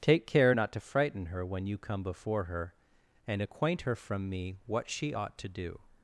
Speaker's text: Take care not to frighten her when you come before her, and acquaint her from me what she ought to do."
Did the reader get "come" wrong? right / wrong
right